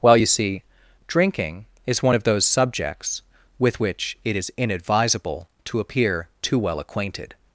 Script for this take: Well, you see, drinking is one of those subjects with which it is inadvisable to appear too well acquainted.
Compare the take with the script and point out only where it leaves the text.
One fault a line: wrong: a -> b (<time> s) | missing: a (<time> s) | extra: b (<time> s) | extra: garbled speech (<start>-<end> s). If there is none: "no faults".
no faults